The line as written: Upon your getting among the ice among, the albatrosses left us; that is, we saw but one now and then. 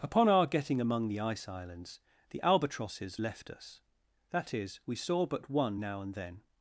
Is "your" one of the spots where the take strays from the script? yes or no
yes